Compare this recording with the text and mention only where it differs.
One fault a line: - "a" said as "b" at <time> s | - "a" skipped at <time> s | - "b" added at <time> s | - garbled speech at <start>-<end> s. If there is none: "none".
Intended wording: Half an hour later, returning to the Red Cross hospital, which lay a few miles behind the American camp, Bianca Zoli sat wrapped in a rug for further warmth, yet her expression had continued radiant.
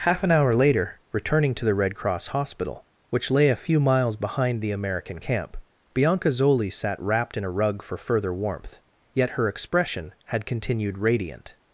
none